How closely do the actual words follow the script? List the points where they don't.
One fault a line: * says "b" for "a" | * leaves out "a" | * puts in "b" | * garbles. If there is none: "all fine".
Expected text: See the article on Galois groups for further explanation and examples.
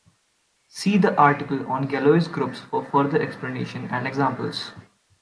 all fine